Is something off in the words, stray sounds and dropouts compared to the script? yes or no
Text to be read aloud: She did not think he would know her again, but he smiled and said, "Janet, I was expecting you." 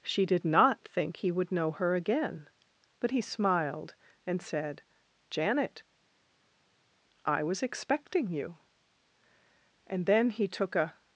yes